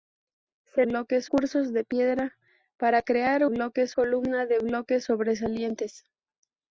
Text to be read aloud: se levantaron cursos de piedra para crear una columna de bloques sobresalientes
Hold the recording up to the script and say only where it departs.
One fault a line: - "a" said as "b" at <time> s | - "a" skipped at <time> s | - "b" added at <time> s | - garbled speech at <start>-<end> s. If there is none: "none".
- "levantaron" said as "bloques" at 0.8 s
- "una" said as "bloques" at 3.4 s